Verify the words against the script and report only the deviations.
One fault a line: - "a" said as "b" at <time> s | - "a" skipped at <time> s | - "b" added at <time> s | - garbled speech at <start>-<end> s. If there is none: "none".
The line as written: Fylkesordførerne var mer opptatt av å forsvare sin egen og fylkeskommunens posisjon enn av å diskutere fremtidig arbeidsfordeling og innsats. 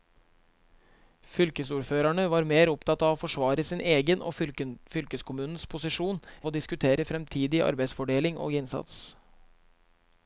- "enn" skipped at 6.2 s